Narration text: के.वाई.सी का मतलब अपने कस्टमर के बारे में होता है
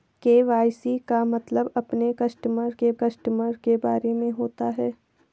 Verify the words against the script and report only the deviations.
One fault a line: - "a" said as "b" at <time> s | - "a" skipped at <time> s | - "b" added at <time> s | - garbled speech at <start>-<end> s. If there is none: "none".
- "कस्टमर के" added at 2.9 s